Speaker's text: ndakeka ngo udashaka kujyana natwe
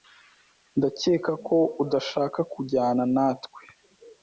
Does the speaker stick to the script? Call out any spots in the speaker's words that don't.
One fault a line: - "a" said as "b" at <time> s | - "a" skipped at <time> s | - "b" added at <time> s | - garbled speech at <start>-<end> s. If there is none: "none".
- "ngo" said as "ko" at 1.5 s